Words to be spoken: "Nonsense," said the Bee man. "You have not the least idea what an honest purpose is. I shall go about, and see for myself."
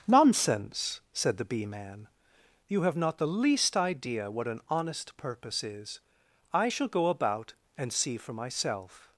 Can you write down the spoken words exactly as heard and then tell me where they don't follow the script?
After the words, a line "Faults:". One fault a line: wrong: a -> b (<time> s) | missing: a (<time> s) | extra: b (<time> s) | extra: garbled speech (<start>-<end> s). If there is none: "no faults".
"Nonsense," said the Bee man. "You have not the least idea what an honest purpose is. I shall go about, and see for myself."
Faults:
no faults